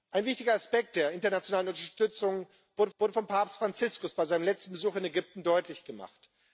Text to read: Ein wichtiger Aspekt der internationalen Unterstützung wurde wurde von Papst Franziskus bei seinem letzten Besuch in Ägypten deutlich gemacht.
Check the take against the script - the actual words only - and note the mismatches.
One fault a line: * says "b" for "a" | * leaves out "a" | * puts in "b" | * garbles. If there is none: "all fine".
all fine